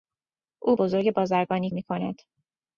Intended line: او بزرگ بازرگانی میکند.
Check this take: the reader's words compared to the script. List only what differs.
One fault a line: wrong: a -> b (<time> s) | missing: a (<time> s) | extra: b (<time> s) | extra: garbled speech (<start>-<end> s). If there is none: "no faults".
no faults